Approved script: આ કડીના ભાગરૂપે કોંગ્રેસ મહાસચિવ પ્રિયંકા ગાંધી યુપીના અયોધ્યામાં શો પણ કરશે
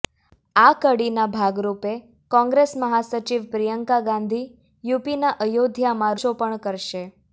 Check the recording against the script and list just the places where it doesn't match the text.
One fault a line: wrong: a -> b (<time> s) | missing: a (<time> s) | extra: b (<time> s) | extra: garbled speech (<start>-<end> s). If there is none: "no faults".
no faults